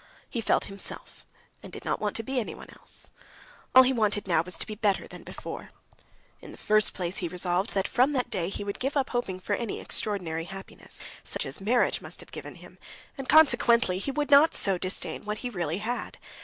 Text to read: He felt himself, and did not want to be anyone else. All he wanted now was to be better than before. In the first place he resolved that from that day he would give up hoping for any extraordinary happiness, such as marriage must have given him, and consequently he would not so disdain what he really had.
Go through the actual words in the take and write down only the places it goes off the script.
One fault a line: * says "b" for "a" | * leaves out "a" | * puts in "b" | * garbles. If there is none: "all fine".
all fine